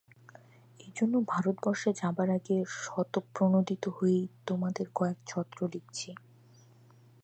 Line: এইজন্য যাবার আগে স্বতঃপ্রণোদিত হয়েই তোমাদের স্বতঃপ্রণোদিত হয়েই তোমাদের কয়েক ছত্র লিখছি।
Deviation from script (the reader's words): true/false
true